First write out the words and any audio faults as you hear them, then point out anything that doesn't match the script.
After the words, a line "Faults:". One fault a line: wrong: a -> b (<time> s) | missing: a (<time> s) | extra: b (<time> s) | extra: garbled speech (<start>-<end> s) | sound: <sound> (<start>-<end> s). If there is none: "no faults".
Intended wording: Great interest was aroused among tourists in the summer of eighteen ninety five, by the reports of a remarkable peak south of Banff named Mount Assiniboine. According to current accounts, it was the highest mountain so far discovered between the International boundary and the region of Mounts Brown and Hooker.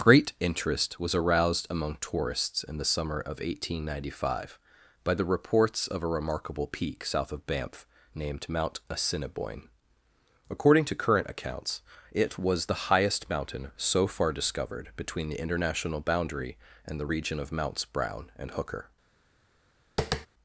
Great interest was aroused among tourists in the summer of eighteen ninety five, by the reports of a remarkable peak south of Banff named Mount Assiniboine. According to current accounts, it was the highest mountain so far discovered between the International boundary and the region of Mounts Brown and Hooker.
Faults:
sound: tap (20.0-20.3 s)